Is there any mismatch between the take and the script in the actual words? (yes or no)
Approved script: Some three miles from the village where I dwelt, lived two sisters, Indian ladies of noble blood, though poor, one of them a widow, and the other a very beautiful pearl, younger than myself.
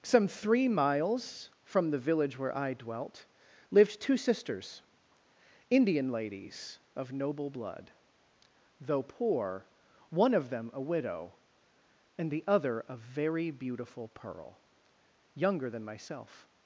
no